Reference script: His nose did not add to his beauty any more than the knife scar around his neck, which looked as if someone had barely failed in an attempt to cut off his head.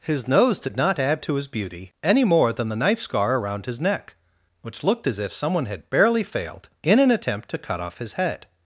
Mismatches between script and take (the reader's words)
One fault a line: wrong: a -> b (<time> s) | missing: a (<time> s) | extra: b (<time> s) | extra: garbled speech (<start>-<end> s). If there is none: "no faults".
no faults